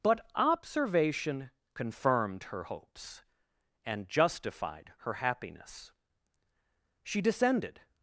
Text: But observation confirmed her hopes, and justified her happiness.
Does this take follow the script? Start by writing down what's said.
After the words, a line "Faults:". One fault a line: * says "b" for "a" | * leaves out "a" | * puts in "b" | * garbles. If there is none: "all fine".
But observation confirmed her hopes, and justified her happiness. She descended
Faults:
* puts in "She descended"